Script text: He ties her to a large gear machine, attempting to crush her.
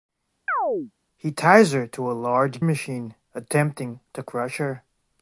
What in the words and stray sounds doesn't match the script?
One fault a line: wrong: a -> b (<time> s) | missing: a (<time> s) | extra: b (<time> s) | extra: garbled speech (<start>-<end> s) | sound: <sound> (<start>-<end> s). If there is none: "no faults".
sound: chirp (0.5-0.9 s)
missing: gear (2.6 s)